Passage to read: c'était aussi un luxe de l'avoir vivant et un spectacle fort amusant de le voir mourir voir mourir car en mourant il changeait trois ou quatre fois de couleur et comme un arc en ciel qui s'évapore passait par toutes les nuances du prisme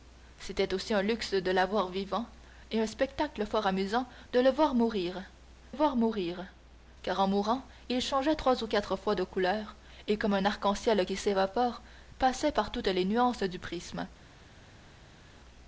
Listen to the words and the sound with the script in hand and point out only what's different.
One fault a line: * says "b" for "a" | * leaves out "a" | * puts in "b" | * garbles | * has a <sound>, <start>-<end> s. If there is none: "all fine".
all fine